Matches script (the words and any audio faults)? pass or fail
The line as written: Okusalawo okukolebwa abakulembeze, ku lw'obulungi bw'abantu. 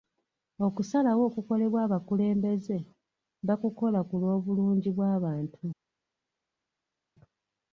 fail